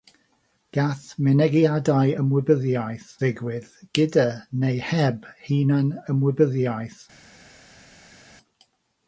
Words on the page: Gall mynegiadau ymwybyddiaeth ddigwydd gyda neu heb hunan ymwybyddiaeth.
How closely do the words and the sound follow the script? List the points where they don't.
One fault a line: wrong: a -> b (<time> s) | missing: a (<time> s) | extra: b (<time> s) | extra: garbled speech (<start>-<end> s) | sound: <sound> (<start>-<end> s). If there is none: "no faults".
no faults